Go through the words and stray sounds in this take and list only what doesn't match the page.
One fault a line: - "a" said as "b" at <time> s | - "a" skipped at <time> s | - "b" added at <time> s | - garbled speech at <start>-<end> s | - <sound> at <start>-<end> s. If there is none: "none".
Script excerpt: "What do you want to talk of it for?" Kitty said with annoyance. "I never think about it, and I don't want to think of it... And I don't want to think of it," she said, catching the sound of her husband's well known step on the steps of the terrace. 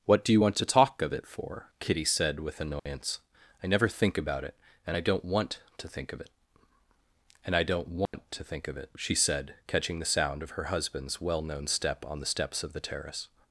- dropout at 2.8-2.9 s
- dropout at 8.1-8.1 s